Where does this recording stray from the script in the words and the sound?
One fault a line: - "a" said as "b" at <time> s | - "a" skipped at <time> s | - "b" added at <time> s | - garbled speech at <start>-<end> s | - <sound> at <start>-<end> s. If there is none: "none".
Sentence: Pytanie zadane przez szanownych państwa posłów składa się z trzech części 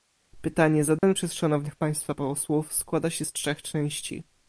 - dropout at 1.0-1.0 s